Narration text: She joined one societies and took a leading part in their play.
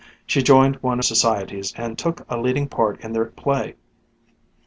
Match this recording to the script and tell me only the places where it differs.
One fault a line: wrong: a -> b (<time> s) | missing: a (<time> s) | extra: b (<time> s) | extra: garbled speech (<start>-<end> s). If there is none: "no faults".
no faults